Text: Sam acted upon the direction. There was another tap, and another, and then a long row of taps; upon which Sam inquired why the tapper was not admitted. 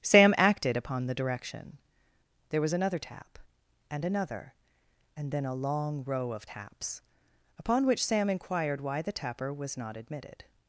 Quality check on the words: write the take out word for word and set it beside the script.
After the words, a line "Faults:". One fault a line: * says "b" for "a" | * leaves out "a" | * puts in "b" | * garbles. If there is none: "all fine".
Sam acted upon the direction. There was another tap, and another, and then a long row of taps; upon which Sam inquired why the tapper was not admitted.
Faults:
all fine